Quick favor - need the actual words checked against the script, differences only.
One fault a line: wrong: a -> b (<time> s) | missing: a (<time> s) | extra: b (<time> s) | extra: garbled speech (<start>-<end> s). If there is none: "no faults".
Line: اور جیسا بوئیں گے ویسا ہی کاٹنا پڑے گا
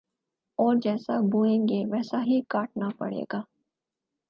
no faults